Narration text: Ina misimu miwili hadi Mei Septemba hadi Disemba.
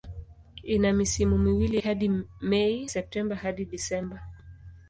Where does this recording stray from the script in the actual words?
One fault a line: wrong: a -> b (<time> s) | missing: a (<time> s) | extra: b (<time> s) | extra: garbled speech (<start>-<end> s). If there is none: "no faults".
no faults